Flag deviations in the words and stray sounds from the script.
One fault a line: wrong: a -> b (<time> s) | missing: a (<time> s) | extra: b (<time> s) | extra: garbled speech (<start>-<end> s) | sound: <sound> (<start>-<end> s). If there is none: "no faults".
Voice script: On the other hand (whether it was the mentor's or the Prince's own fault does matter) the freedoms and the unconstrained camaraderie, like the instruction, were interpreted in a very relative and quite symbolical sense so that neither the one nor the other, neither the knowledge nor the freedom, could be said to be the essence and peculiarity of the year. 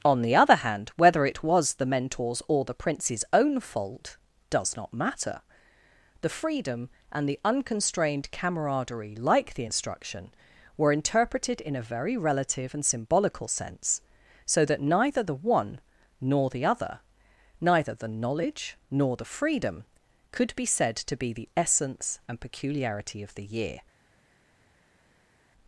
extra: not (4.8 s)
wrong: freedoms -> freedom (6.3 s)
missing: quite (12.8 s)